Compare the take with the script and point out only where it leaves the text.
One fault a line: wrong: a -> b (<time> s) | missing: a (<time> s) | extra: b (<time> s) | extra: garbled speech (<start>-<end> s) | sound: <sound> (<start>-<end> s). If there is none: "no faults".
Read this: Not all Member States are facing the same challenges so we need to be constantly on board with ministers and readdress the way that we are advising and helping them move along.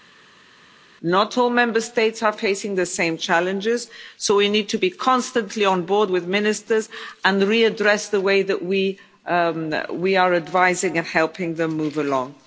no faults